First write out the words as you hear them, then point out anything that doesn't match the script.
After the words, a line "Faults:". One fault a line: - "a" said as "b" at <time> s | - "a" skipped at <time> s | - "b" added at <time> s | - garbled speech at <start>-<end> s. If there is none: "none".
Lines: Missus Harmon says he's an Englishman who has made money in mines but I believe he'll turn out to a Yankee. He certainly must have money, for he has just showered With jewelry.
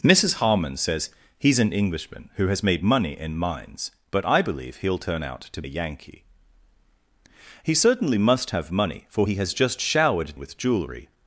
Missus Harmon says he's an Englishman who has made money in mines but I believe he'll turn out to a Yankee. He certainly must have money, for he has just showered With jewelry.
Faults:
none